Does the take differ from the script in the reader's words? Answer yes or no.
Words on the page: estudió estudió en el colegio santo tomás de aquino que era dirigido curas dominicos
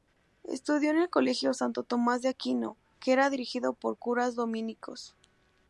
yes